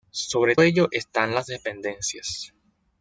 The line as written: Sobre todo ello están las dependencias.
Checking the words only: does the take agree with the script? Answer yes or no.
no